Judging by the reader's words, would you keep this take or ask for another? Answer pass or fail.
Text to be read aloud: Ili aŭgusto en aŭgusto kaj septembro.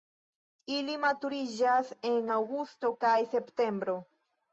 fail